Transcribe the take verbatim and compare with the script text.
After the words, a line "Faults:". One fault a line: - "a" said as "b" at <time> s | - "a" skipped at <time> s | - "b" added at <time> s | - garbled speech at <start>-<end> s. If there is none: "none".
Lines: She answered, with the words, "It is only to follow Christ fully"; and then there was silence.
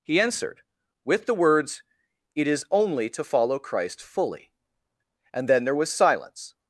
He answered, with the words, "It is only to follow Christ fully"; and then there was silence.
Faults:
- "She" said as "He" at 0.0 s